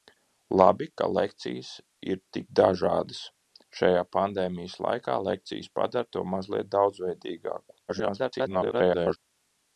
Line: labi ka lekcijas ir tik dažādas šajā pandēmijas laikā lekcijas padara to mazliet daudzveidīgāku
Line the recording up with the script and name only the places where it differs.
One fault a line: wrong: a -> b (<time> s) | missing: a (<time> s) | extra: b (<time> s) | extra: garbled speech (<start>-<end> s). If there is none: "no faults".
extra: garbled speech (7.9-9.2 s)